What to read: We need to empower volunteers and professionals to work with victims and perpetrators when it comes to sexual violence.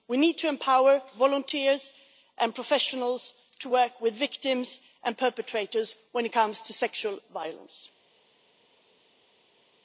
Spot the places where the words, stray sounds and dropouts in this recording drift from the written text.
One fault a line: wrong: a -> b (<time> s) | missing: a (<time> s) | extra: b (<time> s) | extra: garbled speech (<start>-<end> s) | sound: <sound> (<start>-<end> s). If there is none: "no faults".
no faults